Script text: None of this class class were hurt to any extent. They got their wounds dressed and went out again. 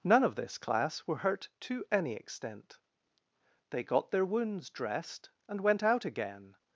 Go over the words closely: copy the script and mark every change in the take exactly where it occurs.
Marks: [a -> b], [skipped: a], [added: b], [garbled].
None of this class [skipped: class] were hurt to any extent. They got their wounds dressed and went out again.